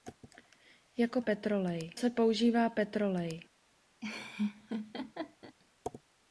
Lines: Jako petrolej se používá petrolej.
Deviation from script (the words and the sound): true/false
true